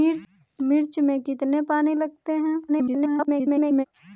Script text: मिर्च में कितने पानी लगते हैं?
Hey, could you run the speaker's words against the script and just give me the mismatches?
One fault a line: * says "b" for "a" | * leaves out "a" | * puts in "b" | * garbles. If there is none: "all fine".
* garbles